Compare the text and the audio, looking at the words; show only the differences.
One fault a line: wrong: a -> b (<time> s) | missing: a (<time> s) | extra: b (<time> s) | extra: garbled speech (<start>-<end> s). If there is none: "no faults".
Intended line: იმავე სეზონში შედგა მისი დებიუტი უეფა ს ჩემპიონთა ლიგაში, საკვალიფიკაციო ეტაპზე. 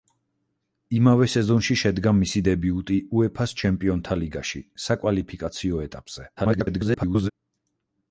extra: garbled speech (6.4-7.3 s)